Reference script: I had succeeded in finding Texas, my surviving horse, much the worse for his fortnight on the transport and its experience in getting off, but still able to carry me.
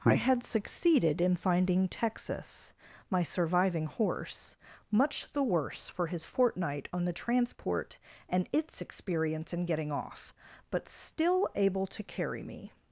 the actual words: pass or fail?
pass